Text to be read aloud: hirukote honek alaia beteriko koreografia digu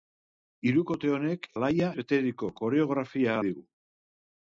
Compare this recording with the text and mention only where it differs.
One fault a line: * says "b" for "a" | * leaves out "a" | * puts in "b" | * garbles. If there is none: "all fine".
all fine